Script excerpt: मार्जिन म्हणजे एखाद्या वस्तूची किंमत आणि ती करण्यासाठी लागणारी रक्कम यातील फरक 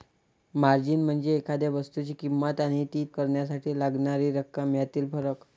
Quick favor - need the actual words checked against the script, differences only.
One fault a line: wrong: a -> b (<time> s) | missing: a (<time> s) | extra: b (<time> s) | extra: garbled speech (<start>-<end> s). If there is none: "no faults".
no faults